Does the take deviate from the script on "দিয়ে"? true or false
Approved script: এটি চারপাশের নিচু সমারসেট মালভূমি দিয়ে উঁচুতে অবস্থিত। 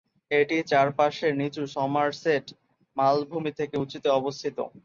true